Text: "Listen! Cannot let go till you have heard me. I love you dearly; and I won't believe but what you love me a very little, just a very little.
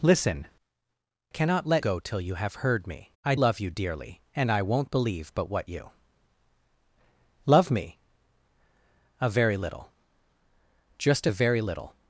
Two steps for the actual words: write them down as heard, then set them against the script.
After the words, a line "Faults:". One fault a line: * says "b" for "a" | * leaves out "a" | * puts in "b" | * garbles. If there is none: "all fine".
"Listen! Cannot let go till you have heard me. I love you dearly; and I won't believe but what you love me a very little, just a very little.
Faults:
all fine